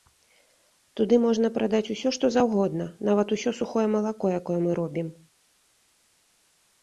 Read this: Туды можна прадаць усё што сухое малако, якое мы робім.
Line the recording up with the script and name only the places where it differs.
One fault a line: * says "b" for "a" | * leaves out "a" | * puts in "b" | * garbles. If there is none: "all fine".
* puts in "заўгодна нават усё"